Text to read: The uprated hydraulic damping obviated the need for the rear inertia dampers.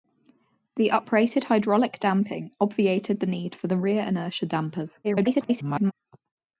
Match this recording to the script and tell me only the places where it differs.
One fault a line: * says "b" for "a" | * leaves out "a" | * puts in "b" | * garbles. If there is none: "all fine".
* garbles